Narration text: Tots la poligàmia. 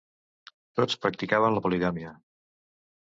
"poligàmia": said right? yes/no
yes